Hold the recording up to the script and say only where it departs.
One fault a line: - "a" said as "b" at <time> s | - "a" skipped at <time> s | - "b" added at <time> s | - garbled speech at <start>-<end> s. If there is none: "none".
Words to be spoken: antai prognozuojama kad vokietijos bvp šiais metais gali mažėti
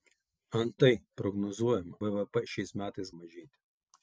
- "kad vokietijos" skipped at 2.0 s
- "gali" skipped at 3.1 s